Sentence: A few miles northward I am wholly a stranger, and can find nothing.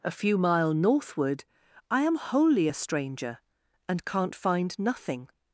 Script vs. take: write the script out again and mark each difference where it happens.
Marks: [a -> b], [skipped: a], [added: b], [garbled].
A few [miles -> mile] northward I am wholly a stranger, and [can -> can't] find nothing.